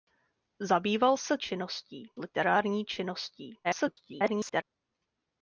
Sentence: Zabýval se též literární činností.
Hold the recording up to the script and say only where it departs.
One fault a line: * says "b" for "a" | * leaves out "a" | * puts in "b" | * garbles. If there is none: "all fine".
* says "činností" for "též"
* garbles